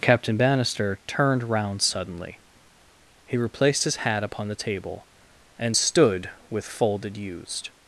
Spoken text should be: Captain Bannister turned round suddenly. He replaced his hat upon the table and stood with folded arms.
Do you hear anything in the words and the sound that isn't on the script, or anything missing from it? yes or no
yes